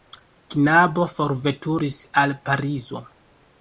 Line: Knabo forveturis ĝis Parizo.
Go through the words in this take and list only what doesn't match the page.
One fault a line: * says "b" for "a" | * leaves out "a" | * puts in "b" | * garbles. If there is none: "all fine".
* says "al" for "ĝis"